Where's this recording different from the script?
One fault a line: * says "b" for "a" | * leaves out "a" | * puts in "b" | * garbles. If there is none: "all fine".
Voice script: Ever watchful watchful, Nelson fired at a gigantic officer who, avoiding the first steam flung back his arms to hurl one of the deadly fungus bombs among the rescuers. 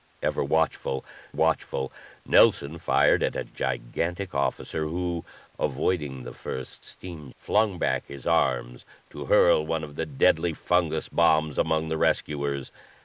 all fine